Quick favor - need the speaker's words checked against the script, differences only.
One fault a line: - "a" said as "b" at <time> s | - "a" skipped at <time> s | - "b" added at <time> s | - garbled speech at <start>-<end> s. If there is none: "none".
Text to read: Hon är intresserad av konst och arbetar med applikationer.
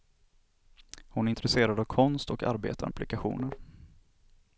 - "med" skipped at 2.9 s